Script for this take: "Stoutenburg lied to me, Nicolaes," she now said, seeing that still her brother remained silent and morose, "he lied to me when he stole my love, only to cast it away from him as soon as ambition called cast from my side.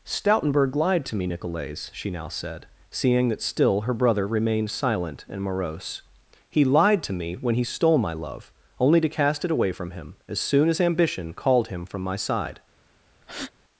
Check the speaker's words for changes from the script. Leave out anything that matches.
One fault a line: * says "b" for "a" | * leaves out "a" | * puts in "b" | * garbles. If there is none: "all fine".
* says "him" for "cast"